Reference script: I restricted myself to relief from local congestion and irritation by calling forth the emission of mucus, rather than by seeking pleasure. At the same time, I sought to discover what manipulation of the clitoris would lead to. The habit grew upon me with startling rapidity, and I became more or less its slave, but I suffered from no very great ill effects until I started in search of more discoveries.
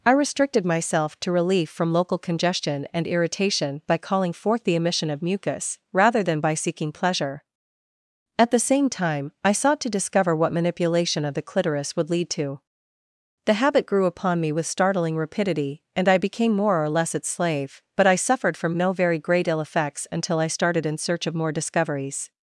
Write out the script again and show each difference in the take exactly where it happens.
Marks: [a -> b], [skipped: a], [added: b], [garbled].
I restricted myself to relief from local congestion and irritation by calling forth the emission of mucus, rather than by seeking pleasure. At the same time, I sought to discover what manipulation of the clitoris would lead to. The habit grew upon me with startling rapidity, and I became more or less its slave, but I suffered from no very great ill effects until I started in search of more discoveries.